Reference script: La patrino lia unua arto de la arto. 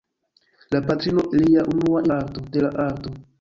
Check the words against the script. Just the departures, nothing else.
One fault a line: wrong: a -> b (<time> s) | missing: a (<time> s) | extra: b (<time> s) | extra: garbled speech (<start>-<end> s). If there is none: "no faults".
no faults